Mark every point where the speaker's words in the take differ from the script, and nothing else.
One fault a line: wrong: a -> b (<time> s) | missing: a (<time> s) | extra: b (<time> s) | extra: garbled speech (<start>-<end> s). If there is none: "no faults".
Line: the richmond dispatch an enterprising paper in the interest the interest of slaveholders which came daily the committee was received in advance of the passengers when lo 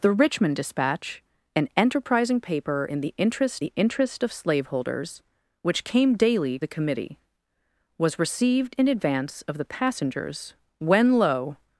no faults